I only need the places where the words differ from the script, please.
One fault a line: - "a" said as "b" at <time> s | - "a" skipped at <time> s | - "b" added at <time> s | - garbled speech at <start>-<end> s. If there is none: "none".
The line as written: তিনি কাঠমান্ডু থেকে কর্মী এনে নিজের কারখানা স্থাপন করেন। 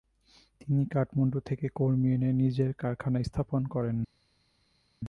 none